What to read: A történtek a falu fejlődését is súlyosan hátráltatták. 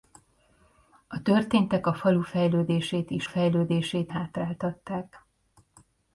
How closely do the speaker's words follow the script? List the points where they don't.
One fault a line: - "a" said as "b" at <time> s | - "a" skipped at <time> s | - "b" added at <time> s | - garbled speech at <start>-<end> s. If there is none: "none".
- "súlyosan" said as "fejlődését" at 3.2 s